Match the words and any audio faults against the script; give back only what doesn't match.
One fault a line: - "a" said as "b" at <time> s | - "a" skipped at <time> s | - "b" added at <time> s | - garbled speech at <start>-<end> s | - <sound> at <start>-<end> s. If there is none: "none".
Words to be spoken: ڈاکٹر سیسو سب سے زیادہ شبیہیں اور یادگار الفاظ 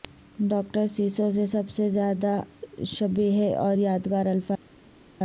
- "سے" added at 1.3 s